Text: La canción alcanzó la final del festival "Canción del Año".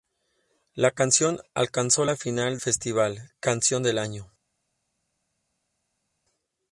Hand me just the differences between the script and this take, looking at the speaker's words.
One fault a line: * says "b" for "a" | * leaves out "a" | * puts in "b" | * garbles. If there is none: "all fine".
* leaves out "del"